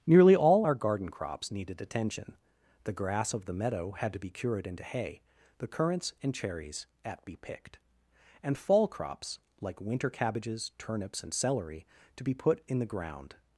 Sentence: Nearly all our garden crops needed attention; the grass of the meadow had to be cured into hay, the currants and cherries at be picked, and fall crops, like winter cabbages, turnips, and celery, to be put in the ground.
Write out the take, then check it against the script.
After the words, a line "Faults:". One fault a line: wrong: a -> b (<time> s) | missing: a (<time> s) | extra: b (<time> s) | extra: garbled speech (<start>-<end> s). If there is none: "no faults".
Nearly all our garden crops needed attention; the grass of the meadow had to be cured into hay, the currants and cherries at be picked, and fall crops, like winter cabbages, turnips, and celery, to be put in the ground.
Faults:
no faults